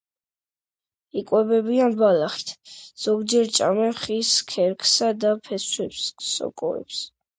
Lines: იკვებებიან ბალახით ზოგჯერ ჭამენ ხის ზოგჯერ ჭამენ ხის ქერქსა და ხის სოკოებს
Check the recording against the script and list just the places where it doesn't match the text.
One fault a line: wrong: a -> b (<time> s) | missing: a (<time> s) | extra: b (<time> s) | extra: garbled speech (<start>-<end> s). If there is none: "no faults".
missing: ზოგჯერ ჭამენ ხის (4.3 s)
wrong: ხის -> ფესვებს (5.5 s)